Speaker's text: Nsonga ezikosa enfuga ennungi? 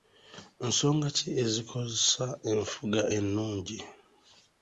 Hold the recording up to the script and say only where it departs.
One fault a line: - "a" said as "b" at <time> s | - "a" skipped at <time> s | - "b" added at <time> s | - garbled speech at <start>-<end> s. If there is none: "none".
- "ki" added at 1.2 s